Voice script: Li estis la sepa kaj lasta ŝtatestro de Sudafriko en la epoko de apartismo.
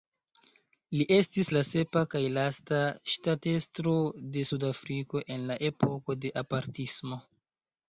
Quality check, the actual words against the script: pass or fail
pass